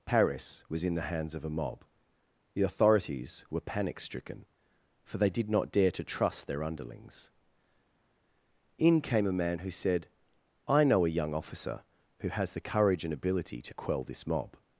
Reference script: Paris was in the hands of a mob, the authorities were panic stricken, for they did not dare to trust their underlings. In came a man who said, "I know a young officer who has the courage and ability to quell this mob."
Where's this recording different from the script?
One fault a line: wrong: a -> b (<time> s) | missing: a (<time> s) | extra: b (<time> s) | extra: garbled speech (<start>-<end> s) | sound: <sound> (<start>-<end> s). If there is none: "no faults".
no faults